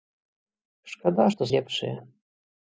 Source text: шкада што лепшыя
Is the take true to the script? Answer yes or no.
yes